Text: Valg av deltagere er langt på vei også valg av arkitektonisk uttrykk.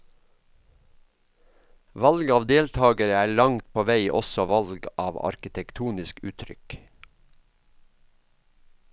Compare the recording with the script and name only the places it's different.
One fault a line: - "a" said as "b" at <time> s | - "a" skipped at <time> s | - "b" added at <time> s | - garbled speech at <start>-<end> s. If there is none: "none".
none